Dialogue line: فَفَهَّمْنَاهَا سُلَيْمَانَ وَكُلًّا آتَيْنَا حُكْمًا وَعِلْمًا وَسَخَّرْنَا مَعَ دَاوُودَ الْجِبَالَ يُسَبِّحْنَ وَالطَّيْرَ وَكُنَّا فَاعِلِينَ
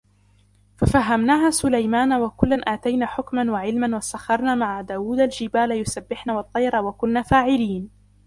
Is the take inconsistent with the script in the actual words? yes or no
no